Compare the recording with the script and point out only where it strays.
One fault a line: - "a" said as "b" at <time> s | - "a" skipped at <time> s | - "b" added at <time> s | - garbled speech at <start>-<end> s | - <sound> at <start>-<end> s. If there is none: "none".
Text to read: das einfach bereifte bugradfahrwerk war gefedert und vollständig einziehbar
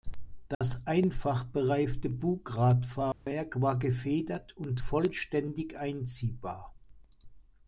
- dropout at 0.5-0.6 s
- dropout at 3.1-3.3 s